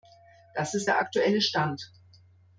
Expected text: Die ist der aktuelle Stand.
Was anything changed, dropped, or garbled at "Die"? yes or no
yes